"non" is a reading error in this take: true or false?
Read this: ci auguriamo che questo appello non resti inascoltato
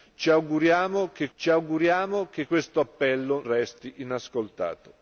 true